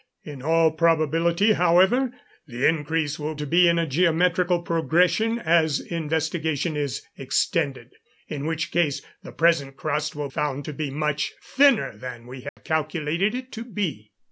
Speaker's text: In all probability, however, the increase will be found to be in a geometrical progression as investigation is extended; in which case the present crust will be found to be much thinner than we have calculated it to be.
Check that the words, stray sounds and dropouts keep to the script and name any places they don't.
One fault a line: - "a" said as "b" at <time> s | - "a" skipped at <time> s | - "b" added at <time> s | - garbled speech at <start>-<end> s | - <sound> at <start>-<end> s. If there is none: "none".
- "be found" skipped at 3.4 s
- "be" skipped at 10.3 s
- dropout at 12.5-12.6 s